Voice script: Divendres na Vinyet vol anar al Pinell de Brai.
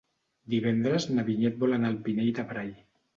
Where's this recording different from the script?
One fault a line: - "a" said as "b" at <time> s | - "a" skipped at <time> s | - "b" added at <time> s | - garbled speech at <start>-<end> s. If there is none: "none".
none